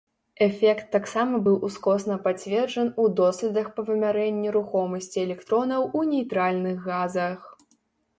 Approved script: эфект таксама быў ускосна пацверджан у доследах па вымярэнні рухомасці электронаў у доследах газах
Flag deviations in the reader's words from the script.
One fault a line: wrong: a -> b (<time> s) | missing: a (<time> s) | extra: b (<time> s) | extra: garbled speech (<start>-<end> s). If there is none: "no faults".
wrong: доследах -> нейтральных (6.1 s)